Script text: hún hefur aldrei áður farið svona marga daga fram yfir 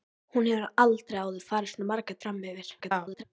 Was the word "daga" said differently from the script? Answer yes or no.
yes